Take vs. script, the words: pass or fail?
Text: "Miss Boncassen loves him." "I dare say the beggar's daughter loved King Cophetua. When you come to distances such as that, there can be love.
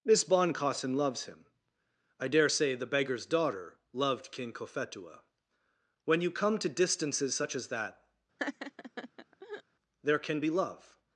pass